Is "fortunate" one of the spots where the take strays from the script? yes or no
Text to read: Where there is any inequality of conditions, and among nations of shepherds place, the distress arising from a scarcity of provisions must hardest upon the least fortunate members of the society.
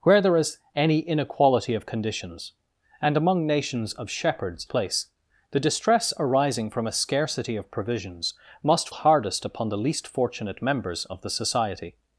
no